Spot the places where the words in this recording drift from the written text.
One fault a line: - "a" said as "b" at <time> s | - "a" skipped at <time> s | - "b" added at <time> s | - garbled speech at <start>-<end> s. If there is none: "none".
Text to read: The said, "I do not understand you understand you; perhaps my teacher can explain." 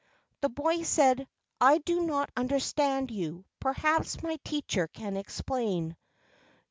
- "boy" added at 0.5 s
- "understand you" skipped at 3.4 s